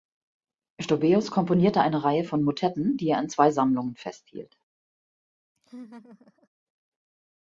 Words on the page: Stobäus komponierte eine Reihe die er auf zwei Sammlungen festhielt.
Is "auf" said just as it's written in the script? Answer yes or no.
no